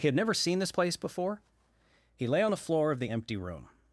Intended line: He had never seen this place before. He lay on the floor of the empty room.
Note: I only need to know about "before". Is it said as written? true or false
true